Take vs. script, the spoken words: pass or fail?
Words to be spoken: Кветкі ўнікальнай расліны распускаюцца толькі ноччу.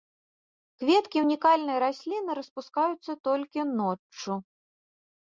pass